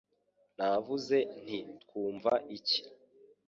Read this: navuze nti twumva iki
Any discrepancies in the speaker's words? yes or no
no